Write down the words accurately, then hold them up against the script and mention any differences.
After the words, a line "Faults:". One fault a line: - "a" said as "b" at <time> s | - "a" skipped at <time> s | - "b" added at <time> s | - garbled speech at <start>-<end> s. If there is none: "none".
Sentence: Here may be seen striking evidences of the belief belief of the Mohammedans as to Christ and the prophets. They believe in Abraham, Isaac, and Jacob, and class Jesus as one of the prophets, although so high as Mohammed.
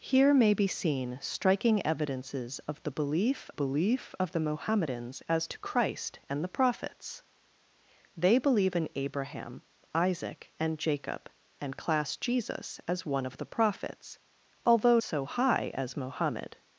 Here may be seen striking evidences of the belief belief of the Mohammedans as to Christ and the prophets. They believe in Abraham, Isaac, and Jacob, and class Jesus as one of the prophets, although so high as Mohammed.
Faults:
none